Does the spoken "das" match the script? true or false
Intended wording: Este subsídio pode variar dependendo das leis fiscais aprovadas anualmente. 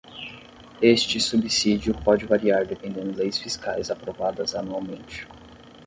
false